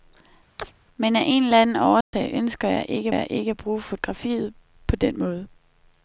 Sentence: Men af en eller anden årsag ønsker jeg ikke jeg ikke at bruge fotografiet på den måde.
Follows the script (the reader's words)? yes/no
yes